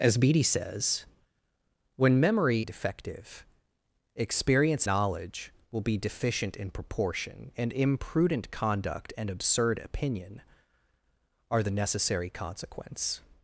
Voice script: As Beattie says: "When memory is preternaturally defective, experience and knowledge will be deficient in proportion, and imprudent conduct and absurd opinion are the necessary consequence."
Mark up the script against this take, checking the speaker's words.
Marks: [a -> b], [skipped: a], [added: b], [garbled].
As Beattie says: "When memory [skipped: is preternaturally] defective, experience [skipped: and] knowledge will be deficient in proportion, and imprudent conduct and absurd opinion are the necessary consequence."